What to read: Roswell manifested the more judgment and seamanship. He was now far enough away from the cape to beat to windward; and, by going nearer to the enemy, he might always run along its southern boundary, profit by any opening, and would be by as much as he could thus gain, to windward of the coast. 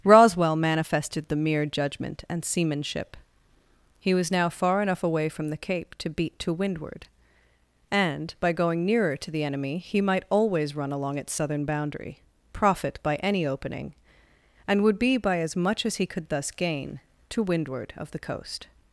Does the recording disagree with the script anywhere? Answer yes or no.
yes